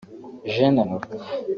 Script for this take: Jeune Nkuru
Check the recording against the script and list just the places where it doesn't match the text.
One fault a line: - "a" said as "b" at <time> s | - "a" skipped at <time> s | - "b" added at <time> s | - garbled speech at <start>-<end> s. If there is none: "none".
none